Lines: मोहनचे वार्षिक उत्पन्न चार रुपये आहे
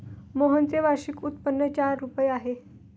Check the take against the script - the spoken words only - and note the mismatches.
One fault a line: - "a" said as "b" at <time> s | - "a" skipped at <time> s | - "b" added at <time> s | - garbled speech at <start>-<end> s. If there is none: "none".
none